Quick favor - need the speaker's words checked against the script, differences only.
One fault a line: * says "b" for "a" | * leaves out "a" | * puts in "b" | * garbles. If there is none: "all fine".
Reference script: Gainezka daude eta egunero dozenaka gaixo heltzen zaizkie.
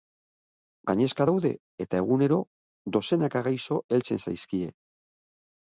all fine